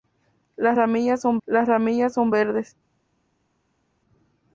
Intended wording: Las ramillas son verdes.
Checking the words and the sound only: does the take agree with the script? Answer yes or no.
no